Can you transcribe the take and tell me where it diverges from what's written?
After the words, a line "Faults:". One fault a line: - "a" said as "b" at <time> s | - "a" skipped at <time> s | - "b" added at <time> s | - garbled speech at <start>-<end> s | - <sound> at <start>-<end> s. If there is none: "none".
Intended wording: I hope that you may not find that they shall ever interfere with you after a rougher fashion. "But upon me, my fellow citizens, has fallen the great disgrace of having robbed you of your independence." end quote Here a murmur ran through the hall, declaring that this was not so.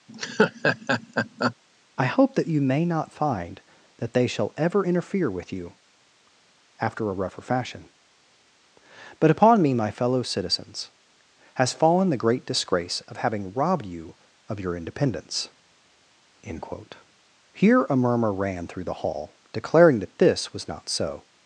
I hope that you may not find that they shall ever interfere with you after a rougher fashion. "But upon me, my fellow citizens, has fallen the great disgrace of having robbed you of your independence." end quote Here a murmur ran through the hall, declaring that this was not so.
Faults:
- laugh at 0.1-1.6 s